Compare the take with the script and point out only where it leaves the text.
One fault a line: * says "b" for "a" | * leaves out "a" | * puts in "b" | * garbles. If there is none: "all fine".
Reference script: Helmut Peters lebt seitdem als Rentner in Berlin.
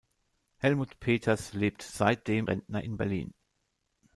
* leaves out "als"